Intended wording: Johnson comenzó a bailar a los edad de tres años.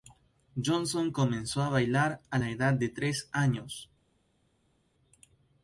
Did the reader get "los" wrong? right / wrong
wrong